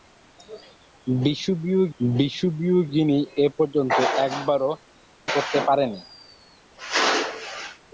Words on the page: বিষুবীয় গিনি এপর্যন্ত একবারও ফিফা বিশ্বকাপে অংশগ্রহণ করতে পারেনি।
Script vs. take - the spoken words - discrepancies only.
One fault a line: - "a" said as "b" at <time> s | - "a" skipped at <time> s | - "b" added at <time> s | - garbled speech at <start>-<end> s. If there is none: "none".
- "বিষুবীয়" added at 2.0 s
- "ফিফা বিশ্বকাপে অংশগ্রহণ" skipped at 4.7 s